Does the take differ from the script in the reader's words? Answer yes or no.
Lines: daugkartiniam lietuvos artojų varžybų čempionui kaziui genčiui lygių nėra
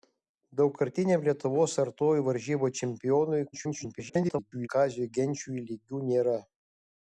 yes